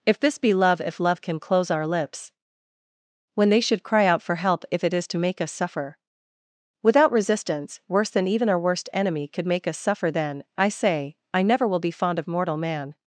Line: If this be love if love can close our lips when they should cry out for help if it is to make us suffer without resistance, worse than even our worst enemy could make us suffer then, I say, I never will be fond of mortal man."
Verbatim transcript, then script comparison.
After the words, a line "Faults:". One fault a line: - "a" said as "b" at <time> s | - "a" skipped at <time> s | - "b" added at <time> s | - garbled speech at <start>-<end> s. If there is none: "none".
If this be love if love can close our lips when they should cry out for help if it is to make us suffer without resistance, worse than even our worst enemy could make us suffer then, I say, I never will be fond of mortal man."
Faults:
none